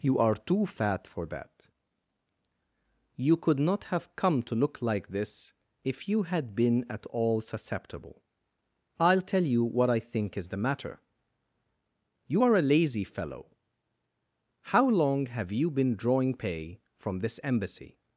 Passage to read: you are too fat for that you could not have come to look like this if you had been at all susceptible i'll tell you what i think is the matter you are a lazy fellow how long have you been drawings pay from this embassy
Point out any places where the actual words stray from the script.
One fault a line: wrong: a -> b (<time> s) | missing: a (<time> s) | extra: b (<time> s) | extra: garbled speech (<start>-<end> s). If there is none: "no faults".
wrong: drawings -> drawing (16.0 s)